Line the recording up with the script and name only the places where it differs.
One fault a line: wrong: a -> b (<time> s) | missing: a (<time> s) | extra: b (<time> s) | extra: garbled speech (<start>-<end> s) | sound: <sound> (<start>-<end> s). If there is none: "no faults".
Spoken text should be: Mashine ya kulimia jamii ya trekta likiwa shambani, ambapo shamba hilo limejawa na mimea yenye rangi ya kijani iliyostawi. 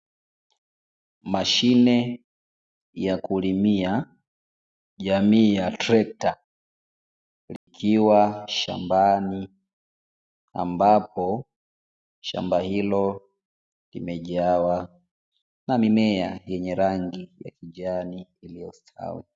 sound: dropout (7.6-7.7 s)